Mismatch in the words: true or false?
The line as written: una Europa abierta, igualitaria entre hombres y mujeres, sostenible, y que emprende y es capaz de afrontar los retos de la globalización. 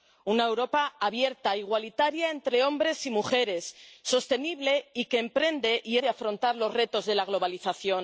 true